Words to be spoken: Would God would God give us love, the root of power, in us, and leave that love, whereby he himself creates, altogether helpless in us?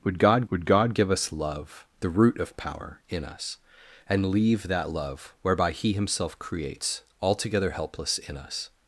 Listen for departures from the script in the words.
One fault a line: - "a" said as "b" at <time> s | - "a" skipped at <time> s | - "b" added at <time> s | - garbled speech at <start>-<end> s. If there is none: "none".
none